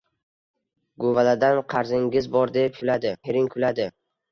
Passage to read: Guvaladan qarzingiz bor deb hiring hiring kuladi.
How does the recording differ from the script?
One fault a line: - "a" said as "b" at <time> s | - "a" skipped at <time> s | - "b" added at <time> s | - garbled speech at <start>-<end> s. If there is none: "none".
- "hiring" said as "kuladi" at 2.8 s